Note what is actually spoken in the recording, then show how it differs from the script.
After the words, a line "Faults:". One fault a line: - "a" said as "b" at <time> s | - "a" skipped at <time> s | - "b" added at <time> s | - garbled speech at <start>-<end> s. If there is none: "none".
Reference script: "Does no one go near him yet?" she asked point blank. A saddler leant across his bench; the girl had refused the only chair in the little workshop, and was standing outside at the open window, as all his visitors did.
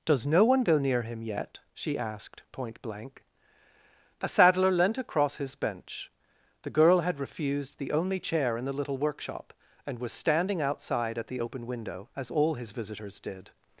"Does no one go near him yet?" she asked point blank. A saddler leant across his bench; the girl had refused the only chair in the little workshop, and was standing outside at the open window, as all his visitors did.
Faults:
none